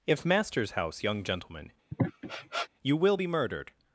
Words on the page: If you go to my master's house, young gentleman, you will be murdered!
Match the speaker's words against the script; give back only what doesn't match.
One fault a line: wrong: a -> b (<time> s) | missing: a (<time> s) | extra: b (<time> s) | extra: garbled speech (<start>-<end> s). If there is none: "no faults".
missing: you go to my (0.2 s)